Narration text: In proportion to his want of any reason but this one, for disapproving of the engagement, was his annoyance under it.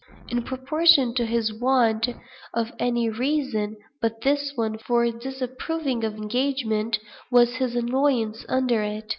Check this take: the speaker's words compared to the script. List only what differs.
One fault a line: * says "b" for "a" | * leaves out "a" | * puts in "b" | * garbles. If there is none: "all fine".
* leaves out "the"